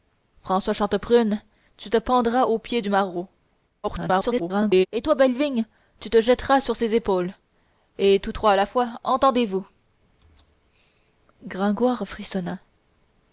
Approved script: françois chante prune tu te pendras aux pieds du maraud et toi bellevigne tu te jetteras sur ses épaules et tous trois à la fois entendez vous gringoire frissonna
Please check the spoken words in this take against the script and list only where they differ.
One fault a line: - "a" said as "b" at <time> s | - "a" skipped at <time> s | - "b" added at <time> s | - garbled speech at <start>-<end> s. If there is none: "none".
- garbled speech at 3.8-4.9 s